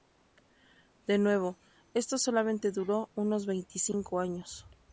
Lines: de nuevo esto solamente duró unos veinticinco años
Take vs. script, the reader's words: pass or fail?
pass